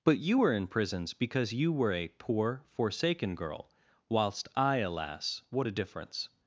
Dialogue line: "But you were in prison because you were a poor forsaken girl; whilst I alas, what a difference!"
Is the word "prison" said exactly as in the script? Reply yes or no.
no